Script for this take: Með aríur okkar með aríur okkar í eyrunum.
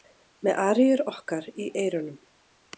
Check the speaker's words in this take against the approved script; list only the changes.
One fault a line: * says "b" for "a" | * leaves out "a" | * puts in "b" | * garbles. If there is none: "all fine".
* leaves out "með aríur okkar"